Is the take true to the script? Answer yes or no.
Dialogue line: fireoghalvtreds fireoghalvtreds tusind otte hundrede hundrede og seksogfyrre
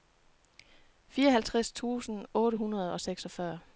no